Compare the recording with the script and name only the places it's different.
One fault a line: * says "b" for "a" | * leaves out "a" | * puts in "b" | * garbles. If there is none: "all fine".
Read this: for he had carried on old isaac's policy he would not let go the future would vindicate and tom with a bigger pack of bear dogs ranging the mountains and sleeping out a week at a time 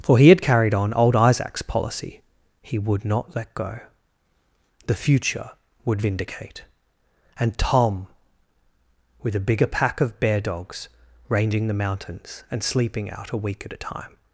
all fine